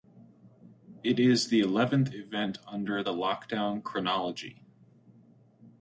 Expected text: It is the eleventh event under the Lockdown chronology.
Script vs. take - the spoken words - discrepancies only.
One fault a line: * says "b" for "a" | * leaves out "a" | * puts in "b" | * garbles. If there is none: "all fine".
all fine